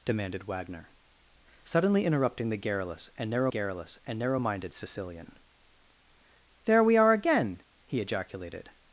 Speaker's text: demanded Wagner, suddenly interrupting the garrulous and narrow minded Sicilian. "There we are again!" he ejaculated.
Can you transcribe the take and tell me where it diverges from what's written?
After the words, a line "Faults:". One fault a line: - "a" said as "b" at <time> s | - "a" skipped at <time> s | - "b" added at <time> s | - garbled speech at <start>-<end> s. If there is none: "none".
demanded Wagner, suddenly interrupting the garrulous and narrow garrulous and narrow minded Sicilian. "There we are again!" he ejaculated.
Faults:
- "garrulous and narrow" added at 3.5 s